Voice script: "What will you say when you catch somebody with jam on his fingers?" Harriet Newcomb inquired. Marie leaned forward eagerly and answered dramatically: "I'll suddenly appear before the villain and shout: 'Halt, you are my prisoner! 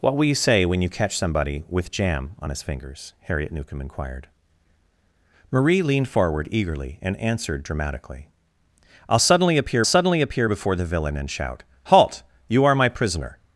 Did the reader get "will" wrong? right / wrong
right